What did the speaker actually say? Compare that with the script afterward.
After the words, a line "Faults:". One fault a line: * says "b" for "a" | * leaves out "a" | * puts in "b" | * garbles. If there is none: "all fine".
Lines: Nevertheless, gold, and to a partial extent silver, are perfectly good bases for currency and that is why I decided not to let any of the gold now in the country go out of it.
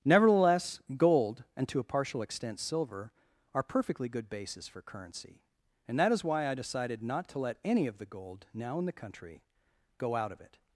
Nevertheless, gold, and to a partial extent silver, are perfectly good bases for currency and that is why I decided not to let any of the gold now in the country go out of it.
Faults:
all fine